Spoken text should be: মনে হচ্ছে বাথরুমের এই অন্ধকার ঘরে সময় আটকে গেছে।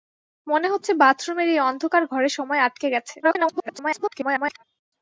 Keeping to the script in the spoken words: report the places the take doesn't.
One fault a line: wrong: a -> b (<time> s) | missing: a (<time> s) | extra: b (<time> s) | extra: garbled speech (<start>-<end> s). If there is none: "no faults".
extra: garbled speech (3.2-4.6 s)